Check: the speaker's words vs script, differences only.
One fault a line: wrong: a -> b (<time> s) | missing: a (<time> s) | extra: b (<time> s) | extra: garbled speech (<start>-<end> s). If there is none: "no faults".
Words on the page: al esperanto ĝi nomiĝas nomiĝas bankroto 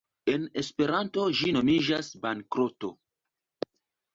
wrong: al -> en (0.3 s)
missing: nomiĝas (2.1 s)